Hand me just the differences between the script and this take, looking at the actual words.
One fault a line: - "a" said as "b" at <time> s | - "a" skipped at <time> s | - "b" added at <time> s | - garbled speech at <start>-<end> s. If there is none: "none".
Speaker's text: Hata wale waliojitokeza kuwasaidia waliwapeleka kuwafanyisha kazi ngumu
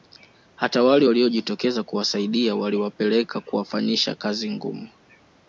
none